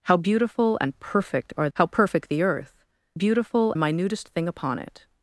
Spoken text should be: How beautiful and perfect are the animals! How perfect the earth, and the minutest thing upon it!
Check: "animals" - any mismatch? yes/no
yes